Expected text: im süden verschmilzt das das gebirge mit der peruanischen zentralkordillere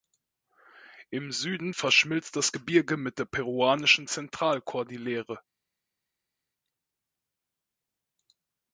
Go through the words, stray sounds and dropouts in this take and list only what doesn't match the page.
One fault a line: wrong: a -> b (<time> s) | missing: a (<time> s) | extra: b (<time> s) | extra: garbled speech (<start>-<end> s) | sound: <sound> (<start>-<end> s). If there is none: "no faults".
missing: das (2.5 s)